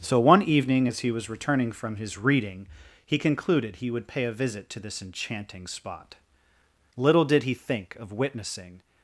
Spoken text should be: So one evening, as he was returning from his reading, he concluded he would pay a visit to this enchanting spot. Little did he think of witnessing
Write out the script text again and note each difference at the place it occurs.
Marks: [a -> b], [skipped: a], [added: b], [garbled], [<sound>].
So one evening, as he was returning from his reading, he concluded he would pay a visit to this enchanting spot. Little did he think of witnessing